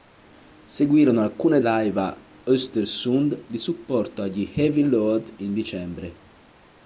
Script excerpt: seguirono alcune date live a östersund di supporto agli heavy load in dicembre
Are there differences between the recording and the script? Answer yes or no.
yes